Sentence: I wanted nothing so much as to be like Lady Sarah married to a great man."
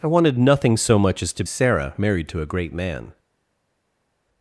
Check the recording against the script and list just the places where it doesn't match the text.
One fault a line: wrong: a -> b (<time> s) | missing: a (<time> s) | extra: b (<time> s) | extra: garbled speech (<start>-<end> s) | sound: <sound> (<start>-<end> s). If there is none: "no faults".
missing: be like Lady (1.4 s)